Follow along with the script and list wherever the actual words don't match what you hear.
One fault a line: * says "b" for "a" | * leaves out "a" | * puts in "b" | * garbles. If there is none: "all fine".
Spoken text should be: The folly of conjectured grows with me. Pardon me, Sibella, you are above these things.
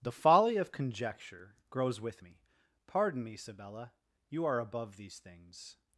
* says "conjecture" for "conjectured"